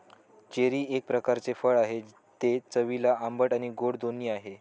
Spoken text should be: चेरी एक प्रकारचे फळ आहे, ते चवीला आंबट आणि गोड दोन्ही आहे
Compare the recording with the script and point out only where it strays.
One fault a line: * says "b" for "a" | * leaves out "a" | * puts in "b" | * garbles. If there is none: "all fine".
all fine